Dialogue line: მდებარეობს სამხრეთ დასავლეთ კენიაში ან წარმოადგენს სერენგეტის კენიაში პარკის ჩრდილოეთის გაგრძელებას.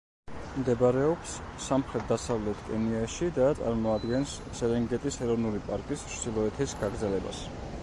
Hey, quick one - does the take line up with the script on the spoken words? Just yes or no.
no